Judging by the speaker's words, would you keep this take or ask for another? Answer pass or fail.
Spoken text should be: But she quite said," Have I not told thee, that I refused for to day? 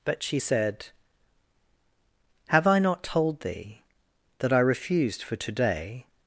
fail